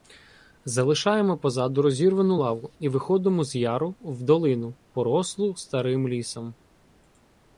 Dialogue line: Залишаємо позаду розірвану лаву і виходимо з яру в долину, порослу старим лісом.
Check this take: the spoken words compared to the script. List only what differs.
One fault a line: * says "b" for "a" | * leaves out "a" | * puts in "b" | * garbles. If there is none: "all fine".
all fine